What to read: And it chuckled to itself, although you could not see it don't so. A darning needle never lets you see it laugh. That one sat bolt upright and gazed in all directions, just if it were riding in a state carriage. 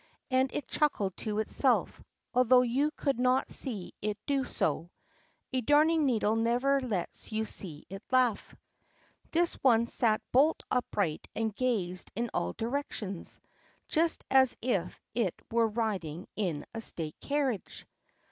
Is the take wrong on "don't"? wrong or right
wrong